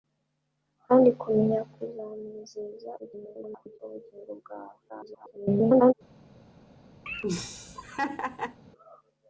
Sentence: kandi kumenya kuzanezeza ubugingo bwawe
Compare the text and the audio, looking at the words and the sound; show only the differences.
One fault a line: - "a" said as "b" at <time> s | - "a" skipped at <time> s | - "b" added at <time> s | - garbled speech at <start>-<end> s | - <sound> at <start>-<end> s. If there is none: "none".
- garbled speech at 3.0-3.8 s
- garbled speech at 4.9-5.9 s
- laugh at 7.1-8.6 s